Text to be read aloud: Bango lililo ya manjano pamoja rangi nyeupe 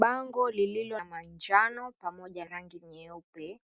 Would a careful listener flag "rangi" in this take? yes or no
no